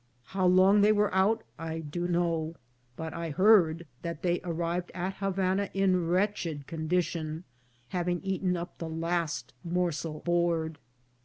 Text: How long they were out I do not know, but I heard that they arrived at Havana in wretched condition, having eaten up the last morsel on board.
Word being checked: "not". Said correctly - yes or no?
no